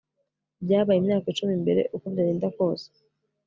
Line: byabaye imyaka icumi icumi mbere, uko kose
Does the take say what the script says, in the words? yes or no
no